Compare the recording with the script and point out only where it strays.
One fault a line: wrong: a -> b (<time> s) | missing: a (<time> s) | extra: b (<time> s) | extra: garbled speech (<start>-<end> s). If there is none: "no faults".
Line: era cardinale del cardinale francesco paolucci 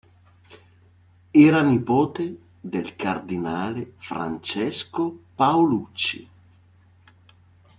wrong: cardinale -> nipote (1.6 s)